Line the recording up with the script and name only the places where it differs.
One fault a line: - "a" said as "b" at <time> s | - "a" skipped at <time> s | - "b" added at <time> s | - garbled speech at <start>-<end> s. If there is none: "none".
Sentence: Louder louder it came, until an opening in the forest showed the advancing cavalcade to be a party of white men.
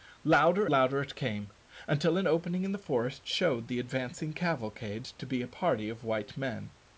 none